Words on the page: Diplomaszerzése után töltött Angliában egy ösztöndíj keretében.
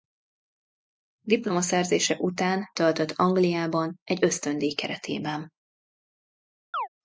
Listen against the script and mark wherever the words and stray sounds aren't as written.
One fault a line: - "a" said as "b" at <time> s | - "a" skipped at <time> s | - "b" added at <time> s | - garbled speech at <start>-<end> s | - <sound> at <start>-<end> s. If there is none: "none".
- chirp at 6.7-6.9 s